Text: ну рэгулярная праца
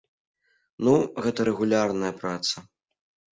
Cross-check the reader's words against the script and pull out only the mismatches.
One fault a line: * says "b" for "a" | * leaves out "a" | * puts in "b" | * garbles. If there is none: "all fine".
* puts in "гэта"